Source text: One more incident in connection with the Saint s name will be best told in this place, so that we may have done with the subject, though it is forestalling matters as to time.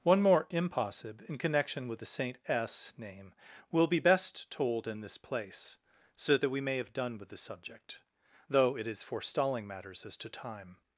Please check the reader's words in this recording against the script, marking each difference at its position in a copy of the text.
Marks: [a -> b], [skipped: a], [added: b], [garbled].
One more [incident -> impossib] in connection with the Saint s name will be best told in this place, so that we may have done with the subject, though it is forestalling matters as to time.